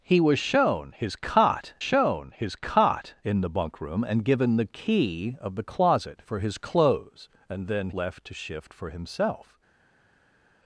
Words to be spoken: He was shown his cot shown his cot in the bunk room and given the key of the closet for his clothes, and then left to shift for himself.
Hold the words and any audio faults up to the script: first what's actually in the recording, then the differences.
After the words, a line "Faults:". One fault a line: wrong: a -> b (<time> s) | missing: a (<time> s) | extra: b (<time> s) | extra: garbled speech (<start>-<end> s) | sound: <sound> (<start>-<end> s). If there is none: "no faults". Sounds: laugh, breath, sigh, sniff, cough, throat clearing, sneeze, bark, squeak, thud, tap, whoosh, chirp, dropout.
He was shown his cot shown his cot in the bunk room and given the key of the closet for his clothes, and then left to shift for himself.
Faults:
no faults